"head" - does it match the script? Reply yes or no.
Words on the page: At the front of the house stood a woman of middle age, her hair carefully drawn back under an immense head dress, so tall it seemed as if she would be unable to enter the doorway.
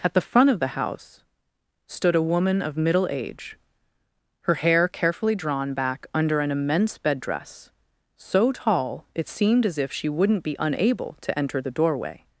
no